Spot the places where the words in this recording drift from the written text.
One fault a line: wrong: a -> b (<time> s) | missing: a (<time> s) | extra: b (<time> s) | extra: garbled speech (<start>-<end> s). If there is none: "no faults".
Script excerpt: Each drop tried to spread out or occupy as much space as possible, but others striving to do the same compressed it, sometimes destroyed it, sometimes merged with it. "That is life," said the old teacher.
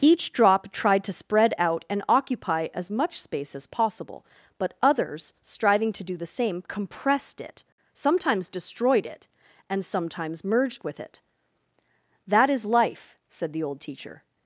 wrong: or -> and (1.9 s)
extra: and (9.7 s)